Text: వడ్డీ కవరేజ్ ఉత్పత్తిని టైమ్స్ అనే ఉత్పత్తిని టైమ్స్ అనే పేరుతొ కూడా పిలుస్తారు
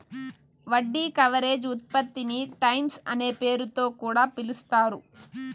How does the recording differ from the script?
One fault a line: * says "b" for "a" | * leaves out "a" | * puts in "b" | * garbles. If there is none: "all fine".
* leaves out "ఉత్పత్తిని టైమ్స్ అనే"